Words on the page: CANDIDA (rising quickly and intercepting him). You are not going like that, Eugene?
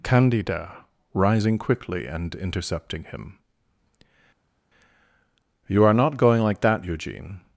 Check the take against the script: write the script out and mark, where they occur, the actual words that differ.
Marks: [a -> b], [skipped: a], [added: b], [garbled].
CANDIDA (rising quickly and intercepting him). You are not going like that, Eugene?